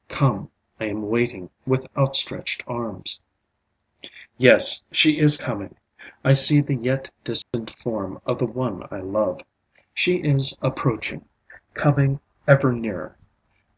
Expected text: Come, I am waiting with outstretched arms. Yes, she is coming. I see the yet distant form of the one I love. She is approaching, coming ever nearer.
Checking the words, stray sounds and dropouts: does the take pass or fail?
fail